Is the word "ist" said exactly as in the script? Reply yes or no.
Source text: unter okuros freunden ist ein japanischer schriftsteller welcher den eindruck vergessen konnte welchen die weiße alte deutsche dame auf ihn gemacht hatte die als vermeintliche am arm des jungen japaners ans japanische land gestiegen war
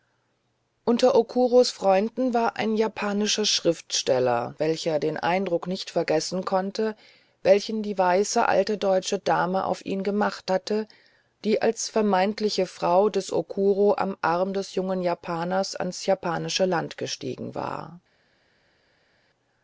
no